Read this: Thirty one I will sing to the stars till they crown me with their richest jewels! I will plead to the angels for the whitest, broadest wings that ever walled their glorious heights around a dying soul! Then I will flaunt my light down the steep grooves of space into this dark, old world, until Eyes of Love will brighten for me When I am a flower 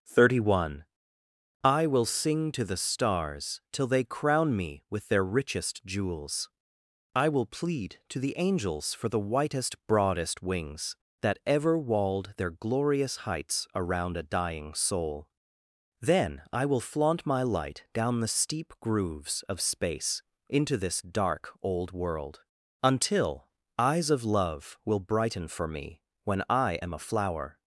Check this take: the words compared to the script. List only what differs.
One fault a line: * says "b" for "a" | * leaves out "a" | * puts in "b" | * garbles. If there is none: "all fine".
all fine